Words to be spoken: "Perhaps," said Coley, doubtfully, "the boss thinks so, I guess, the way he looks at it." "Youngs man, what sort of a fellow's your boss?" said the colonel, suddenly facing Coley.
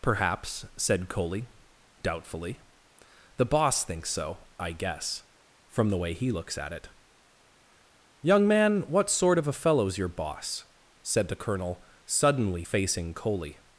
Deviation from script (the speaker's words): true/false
true